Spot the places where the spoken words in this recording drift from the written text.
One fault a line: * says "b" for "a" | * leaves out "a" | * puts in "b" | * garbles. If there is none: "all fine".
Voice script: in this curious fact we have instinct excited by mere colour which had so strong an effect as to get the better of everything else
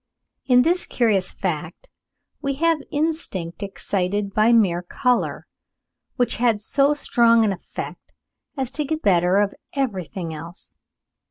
* leaves out "the"